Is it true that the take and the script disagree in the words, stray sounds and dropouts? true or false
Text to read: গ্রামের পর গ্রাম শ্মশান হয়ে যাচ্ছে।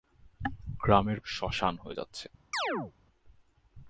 true